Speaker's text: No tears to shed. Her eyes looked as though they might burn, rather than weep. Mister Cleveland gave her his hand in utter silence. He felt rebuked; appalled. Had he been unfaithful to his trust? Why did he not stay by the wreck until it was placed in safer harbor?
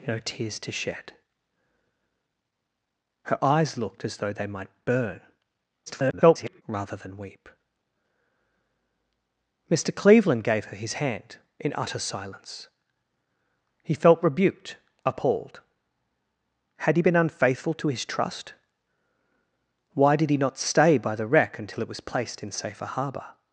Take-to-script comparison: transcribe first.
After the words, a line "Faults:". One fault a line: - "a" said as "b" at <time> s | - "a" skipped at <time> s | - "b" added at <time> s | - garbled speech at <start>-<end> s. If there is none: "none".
No tears to shed. Her eyes looked as though they might burn, [garbled] rather than weep. Mister Cleveland gave her his hand in utter silence. He felt rebuked; appalled. Had he been unfaithful to his trust? Why did he not stay by the wreck until it was placed in safer harbor?
Faults:
- garbled speech at 5.9-6.6 s